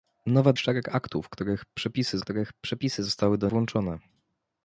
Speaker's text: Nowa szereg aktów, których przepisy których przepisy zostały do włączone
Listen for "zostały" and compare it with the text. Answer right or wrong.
right